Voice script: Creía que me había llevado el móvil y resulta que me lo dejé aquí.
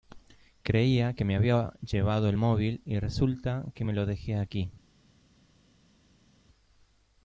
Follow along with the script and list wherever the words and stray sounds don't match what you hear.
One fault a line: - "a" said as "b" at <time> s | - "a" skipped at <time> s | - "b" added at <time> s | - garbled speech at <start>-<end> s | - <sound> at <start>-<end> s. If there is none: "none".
none